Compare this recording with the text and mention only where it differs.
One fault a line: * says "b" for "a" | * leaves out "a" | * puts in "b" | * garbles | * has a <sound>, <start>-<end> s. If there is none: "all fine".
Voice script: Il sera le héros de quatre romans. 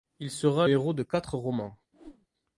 * leaves out "le"
* has a whoosh, 1.9-2.3 s